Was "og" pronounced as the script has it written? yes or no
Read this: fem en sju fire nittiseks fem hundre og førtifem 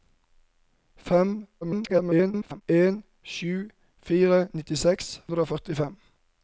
yes